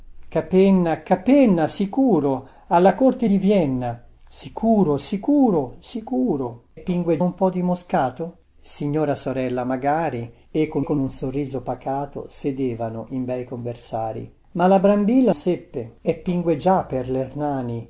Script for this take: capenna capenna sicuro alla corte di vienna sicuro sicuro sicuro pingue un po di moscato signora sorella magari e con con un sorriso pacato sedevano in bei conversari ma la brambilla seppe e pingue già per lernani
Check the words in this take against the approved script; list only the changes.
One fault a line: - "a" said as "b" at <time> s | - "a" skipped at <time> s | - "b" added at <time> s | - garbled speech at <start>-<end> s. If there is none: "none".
none